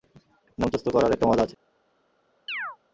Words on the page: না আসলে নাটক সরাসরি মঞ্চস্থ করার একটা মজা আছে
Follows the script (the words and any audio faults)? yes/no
no